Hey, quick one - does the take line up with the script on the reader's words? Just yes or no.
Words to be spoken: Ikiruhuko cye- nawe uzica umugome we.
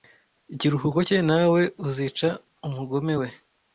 yes